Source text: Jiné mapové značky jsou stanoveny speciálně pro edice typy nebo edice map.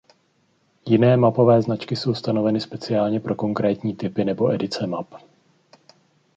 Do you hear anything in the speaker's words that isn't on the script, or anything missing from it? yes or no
yes